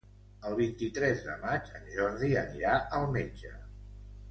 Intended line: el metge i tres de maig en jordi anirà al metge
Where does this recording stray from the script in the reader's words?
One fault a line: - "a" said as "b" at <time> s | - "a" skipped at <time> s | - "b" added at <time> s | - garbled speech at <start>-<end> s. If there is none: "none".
- "metge" said as "vint" at 0.6 s